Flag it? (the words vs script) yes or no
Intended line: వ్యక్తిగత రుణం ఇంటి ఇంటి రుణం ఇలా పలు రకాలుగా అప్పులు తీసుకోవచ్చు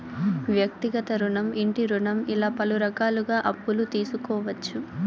yes